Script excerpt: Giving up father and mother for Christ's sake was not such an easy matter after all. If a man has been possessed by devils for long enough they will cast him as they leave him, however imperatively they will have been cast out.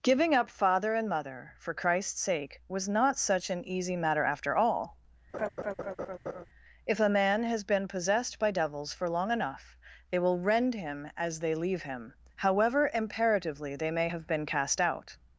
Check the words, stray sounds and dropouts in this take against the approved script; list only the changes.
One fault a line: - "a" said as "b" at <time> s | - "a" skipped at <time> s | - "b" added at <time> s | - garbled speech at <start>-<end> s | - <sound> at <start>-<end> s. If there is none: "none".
- laugh at 5.3-6.5 s
- "cast" said as "rend" at 10.4 s
- "will" said as "may" at 13.9 s